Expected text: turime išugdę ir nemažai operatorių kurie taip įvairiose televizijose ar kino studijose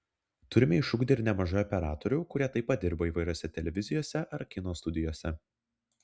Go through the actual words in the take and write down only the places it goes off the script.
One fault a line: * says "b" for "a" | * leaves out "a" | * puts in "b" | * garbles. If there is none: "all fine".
* puts in "pat dirba"